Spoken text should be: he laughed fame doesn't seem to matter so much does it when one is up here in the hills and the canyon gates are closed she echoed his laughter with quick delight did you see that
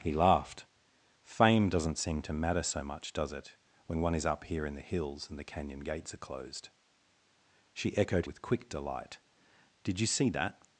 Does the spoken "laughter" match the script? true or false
false